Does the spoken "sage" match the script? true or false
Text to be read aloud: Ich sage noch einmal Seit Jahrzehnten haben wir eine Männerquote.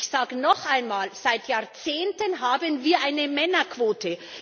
true